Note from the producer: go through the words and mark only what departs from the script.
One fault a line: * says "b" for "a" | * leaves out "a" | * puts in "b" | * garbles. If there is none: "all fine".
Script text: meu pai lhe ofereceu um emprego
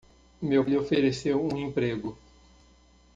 * leaves out "pai"